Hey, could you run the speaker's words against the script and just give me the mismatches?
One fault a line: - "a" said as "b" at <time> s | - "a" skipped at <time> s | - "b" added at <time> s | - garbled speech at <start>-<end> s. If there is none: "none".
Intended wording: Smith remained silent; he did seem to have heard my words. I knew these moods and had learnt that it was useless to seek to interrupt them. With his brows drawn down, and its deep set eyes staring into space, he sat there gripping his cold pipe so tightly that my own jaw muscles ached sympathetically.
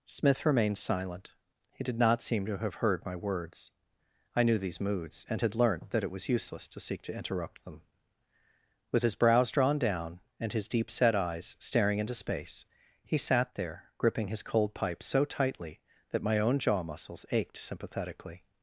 - "not" added at 2.0 s
- "its" said as "his" at 10.5 s